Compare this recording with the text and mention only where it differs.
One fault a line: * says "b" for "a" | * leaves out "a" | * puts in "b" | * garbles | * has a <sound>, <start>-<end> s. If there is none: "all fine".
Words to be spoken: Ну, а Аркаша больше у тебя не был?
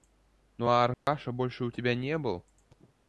* has a dropout, 0.9-1.1 s